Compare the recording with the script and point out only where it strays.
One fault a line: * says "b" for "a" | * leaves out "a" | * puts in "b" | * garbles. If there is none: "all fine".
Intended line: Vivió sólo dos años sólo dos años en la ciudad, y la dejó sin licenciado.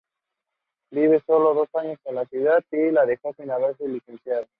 * leaves out "sólo dos años"
* puts in "haberse"